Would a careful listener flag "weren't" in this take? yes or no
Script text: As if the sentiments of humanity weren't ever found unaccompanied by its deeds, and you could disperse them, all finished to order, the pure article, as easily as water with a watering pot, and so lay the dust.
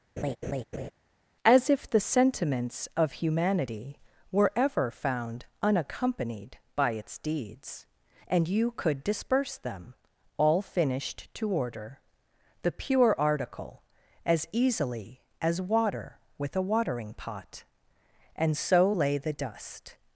yes